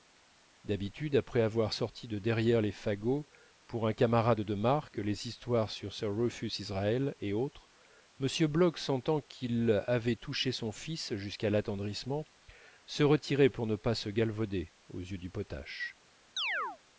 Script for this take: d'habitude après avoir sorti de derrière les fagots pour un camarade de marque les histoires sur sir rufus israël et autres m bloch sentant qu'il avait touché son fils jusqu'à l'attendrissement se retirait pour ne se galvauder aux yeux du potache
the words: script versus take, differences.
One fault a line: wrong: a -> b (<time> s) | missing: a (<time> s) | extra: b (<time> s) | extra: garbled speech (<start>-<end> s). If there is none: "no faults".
extra: pas (13.7 s)